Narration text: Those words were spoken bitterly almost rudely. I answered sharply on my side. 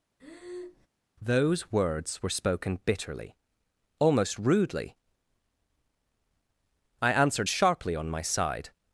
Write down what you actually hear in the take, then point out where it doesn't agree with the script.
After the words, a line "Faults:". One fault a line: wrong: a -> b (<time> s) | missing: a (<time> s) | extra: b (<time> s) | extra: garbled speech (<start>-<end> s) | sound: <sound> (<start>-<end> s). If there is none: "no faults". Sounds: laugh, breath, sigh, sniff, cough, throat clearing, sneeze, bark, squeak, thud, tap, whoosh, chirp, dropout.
Those words were spoken bitterly almost rudely. I answered sharply on my side.
Faults:
sound: breath (0.2-0.9 s)